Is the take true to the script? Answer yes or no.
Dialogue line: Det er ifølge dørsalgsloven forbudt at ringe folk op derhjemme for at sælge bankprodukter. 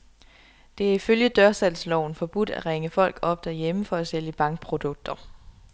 yes